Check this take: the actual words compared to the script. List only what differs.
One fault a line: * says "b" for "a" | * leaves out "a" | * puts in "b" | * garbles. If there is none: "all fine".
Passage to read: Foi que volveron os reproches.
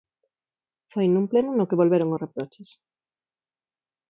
* puts in "nun pleno no"